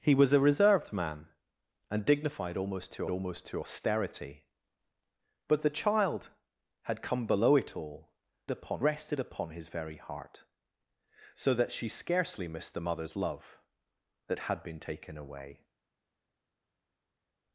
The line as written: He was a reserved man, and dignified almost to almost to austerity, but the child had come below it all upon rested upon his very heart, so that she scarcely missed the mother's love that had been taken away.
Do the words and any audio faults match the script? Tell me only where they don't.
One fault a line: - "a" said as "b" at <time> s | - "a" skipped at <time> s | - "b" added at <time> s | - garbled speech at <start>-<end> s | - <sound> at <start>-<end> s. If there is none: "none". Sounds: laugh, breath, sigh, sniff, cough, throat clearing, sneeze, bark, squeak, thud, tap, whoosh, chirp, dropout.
none